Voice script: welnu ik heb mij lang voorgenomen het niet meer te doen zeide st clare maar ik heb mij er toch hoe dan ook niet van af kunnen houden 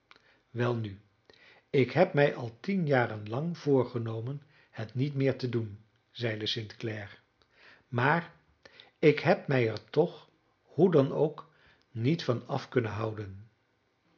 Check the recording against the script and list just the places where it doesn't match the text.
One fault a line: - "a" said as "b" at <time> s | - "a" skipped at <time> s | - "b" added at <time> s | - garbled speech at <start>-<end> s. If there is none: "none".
- "al tien jaren" added at 2.3 s